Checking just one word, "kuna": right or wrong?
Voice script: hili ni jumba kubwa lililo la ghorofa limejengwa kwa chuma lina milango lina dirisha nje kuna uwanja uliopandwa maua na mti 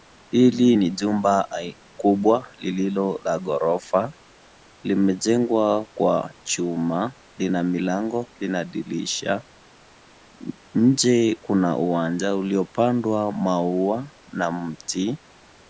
right